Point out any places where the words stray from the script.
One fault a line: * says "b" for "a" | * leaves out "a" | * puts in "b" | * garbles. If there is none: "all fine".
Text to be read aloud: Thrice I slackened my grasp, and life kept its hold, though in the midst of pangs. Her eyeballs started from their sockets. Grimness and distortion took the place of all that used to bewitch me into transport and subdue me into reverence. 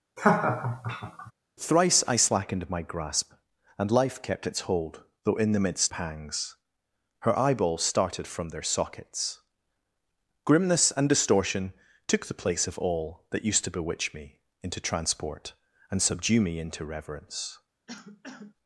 * leaves out "of"